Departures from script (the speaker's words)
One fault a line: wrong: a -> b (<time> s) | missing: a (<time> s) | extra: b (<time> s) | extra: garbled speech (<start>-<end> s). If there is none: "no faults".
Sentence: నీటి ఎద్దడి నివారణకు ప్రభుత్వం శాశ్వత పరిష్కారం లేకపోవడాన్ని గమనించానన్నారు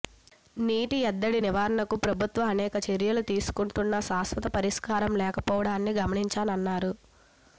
extra: అనేక చర్యలు తీసుకుంటున్నా (2.5 s)